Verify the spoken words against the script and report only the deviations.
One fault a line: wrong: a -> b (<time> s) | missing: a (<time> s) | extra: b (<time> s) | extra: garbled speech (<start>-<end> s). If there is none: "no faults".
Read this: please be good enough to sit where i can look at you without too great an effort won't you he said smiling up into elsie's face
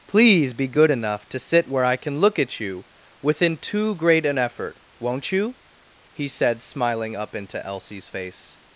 wrong: without -> within (3.2 s)